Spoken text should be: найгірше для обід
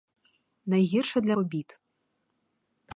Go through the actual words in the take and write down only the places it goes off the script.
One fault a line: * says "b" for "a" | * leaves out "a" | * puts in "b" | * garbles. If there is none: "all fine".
all fine